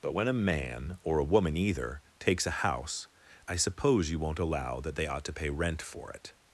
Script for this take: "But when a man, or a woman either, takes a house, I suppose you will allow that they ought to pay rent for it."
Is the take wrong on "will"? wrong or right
wrong